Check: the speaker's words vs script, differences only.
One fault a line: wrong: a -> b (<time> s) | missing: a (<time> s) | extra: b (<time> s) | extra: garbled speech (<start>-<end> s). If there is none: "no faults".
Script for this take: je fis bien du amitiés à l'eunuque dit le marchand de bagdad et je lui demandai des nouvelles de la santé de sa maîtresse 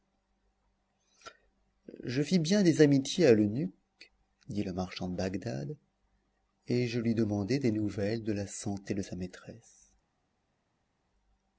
wrong: du -> des (2.6 s)